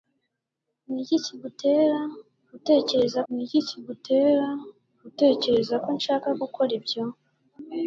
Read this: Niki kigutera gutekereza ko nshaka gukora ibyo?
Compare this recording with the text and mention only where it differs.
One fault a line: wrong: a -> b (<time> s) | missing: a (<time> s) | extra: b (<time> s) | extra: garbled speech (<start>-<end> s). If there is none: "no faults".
extra: niki kigutera gutekereza (3.3 s)